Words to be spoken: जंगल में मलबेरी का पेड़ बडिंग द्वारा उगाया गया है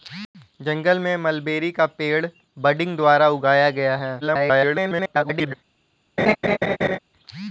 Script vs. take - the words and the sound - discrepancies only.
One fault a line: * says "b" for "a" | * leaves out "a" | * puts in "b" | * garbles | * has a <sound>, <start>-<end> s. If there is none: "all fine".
* garbles
* has a laugh, 6.2-7.0 s